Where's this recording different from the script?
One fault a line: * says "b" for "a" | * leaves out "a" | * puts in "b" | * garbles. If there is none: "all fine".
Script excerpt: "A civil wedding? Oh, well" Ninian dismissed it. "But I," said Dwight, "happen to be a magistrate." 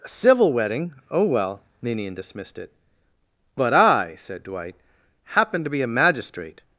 all fine